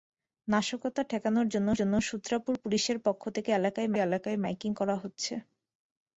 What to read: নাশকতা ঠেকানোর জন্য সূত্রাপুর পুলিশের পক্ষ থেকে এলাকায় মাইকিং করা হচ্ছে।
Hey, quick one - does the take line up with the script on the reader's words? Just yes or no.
no